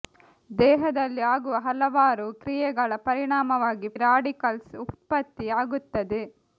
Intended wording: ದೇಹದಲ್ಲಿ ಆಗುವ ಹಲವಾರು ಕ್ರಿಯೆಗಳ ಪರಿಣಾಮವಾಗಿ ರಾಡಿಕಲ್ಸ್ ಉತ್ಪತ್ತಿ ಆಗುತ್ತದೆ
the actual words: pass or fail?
pass